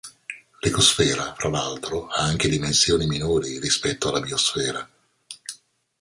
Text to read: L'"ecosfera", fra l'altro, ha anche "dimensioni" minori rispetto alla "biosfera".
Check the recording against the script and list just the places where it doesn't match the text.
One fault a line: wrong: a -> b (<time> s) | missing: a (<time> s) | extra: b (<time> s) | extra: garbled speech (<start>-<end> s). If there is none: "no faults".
no faults